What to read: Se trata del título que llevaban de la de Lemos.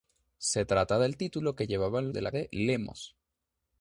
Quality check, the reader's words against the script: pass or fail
pass